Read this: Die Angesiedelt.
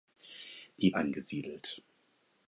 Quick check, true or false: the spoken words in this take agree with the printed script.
true